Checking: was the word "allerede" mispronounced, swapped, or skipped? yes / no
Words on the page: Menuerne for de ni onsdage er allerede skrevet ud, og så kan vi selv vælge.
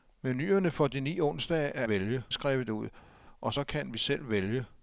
yes